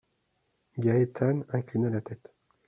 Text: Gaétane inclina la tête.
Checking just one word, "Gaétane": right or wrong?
right